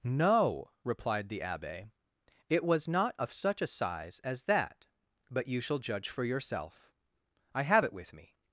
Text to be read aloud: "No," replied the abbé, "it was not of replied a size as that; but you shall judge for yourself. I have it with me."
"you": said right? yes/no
yes